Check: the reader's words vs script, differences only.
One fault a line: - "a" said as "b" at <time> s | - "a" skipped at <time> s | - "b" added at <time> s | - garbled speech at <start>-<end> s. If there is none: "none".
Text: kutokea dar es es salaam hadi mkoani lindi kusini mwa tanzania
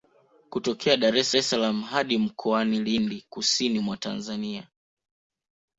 none